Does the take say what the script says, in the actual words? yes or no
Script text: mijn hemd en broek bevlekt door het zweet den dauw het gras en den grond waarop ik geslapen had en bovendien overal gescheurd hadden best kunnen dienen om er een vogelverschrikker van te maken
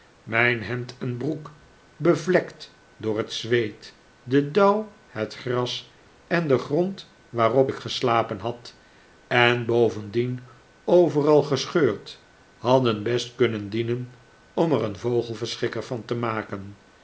yes